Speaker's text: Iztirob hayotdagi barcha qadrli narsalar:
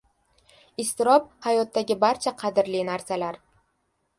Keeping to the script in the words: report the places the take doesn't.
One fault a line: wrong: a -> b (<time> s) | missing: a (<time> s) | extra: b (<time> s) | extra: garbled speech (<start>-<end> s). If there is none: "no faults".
no faults